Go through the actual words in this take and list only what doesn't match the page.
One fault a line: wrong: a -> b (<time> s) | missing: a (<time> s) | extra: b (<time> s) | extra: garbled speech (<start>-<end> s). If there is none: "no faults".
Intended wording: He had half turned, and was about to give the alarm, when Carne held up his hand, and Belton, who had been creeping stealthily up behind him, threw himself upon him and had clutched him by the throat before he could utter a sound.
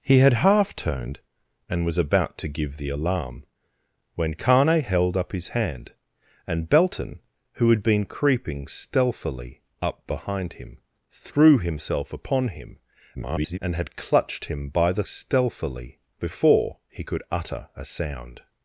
extra: garbled speech (13.1-13.6 s)
wrong: throat -> stealthily (15.0 s)